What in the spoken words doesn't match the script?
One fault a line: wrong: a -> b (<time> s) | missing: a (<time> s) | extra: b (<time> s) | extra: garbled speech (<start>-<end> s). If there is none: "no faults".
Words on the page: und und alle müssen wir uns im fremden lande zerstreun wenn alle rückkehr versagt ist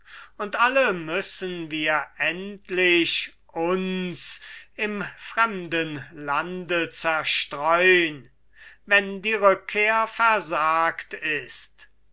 missing: und (0.6 s)
extra: endlich (2.2 s)
wrong: alle -> die (9.2 s)